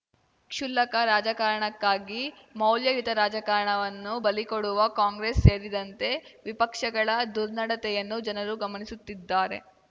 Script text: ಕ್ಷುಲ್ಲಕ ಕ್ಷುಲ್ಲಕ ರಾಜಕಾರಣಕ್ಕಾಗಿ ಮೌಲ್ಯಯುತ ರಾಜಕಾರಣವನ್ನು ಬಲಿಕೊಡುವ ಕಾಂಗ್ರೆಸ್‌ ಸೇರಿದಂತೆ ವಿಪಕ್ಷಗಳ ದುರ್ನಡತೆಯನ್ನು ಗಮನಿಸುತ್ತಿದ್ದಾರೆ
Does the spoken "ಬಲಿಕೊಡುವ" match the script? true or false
true